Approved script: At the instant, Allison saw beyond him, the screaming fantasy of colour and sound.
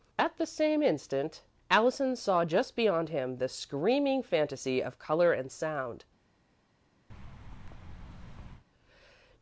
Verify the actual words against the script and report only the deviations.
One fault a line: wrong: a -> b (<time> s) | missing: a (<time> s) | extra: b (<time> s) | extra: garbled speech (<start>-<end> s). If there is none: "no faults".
extra: same (0.5 s)
extra: just (2.4 s)